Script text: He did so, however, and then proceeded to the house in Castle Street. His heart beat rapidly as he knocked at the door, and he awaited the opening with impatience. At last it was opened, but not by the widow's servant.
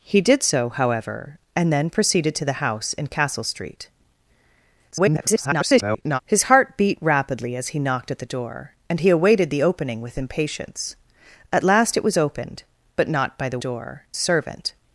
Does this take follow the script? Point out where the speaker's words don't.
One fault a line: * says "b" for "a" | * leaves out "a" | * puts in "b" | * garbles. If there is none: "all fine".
* garbles
* says "door" for "widow's"